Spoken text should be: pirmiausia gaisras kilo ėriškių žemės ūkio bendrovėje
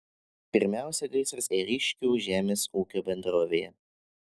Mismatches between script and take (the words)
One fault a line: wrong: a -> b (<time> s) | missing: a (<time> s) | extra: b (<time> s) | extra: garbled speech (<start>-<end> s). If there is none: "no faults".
missing: kilo (1.5 s)